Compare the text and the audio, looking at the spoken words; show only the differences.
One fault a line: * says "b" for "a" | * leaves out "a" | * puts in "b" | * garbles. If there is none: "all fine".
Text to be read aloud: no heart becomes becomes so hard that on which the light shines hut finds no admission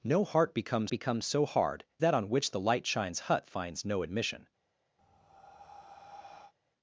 all fine